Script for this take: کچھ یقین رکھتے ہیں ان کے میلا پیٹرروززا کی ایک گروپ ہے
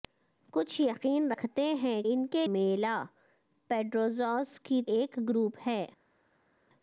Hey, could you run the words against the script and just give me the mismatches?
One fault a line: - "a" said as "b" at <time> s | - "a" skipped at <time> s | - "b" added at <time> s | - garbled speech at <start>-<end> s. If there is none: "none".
none